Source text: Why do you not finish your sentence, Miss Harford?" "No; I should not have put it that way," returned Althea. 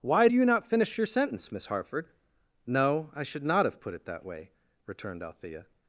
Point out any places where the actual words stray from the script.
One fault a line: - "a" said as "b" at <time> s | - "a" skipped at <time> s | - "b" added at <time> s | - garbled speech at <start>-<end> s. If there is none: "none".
none